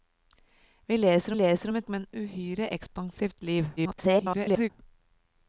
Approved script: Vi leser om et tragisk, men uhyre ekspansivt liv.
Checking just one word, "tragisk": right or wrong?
wrong